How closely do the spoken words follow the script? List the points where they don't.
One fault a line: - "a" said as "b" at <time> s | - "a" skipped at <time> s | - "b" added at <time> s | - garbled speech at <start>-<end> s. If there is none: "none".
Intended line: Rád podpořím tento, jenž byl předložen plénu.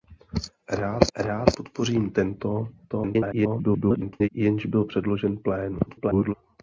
- "rád" added at 1.2 s
- garbled speech at 2.9-4.3 s
- garbled speech at 5.9-6.3 s